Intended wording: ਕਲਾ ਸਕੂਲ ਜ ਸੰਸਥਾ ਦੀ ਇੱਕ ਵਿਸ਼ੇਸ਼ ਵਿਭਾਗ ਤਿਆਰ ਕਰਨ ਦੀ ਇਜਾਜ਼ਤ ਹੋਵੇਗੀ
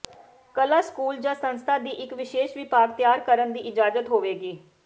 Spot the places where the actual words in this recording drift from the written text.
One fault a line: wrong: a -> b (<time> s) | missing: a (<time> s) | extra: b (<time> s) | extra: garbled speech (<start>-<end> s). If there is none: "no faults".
no faults